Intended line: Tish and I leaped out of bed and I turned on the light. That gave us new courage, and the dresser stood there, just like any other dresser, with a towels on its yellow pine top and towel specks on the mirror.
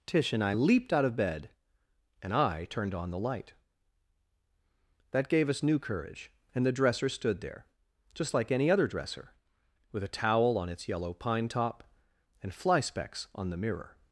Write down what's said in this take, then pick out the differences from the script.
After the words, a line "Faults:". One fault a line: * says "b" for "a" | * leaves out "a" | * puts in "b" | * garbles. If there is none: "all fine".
Tish and I leaped out of bed and I turned on the light. That gave us new courage, and the dresser stood there, just like any other dresser, with a towel on its yellow pine top and fly specks on the mirror.
Faults:
* says "towel" for "towels"
* says "fly" for "towel"